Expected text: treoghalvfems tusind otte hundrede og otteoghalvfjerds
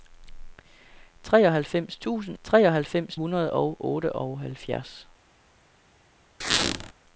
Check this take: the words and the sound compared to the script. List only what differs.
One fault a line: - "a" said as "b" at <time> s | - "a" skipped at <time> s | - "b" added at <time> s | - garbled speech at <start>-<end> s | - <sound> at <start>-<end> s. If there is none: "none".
- "otte" said as "treoghalvfems" at 2.4 s
- squeak at 6.4-6.9 s